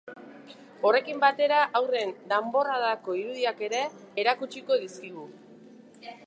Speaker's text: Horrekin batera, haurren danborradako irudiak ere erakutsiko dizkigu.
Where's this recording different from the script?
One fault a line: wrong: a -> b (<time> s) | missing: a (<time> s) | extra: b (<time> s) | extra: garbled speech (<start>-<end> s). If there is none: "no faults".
no faults